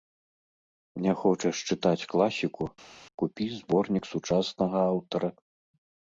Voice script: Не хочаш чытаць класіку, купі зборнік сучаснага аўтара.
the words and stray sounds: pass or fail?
pass